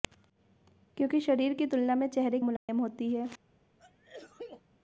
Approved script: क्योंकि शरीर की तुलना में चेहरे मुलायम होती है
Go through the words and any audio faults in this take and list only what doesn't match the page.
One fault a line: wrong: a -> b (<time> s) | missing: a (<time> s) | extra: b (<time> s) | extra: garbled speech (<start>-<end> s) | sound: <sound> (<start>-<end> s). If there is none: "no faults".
sound: dropout (2.6-2.7 s)
sound: sneeze (3.8-4.6 s)